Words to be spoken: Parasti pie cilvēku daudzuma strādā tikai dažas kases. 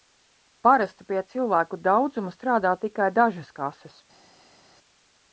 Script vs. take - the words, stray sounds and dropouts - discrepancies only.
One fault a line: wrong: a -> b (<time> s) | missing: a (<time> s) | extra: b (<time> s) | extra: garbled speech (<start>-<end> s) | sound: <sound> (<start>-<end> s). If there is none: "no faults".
no faults